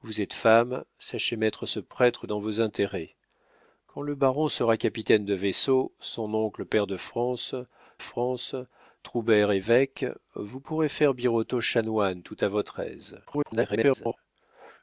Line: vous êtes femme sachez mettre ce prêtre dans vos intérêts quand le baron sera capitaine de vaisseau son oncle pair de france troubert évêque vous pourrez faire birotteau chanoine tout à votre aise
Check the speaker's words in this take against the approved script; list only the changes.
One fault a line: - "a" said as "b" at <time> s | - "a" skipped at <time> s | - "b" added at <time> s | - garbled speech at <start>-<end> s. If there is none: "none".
- "france" added at 8.0 s
- garbled speech at 13.2-14.2 s